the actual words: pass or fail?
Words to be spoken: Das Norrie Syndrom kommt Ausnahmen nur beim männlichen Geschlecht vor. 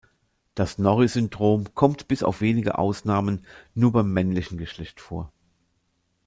fail